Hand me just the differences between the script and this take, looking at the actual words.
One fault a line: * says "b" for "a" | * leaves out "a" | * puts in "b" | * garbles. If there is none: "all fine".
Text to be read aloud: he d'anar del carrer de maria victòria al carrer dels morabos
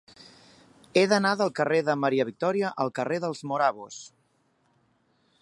all fine